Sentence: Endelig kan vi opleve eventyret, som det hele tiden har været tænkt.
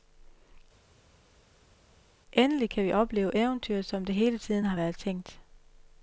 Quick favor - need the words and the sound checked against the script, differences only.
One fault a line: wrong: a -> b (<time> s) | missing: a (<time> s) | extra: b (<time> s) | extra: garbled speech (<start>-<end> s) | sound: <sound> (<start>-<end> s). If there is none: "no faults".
no faults